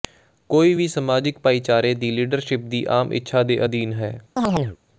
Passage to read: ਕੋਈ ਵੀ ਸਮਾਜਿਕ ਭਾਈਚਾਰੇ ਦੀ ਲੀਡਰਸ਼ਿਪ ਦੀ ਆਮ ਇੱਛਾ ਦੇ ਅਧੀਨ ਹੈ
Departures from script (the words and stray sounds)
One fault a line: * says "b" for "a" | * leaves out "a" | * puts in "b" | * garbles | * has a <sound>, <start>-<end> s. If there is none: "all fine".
* has a chirp, 4.4-4.8 s